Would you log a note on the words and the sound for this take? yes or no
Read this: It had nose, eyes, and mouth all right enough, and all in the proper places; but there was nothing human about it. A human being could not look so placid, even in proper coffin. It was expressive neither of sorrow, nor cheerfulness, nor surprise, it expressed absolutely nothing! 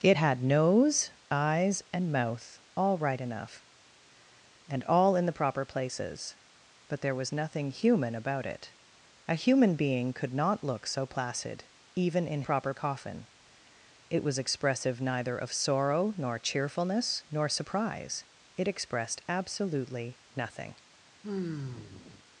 yes